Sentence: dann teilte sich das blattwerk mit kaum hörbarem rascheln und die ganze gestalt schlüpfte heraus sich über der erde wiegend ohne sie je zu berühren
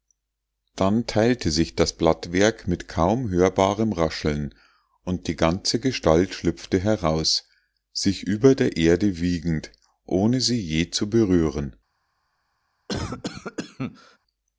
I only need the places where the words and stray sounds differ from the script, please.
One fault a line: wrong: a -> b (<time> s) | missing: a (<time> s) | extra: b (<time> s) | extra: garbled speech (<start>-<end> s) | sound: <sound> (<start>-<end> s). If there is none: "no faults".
sound: cough (12.9-14.2 s)